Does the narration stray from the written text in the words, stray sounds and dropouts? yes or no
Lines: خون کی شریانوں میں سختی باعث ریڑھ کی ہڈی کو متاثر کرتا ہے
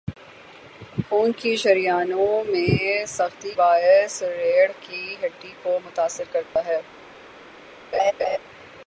yes